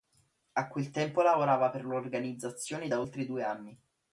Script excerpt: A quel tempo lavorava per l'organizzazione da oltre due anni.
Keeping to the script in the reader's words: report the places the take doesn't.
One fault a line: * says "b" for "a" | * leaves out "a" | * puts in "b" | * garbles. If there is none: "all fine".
all fine